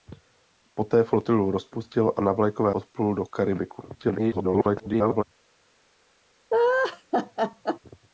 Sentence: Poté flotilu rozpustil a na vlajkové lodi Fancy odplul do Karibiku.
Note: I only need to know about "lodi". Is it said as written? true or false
false